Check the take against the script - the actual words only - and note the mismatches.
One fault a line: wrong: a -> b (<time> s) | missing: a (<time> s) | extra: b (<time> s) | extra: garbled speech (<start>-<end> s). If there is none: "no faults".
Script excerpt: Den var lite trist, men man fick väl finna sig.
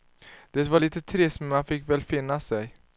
wrong: Den -> Det (0.5 s)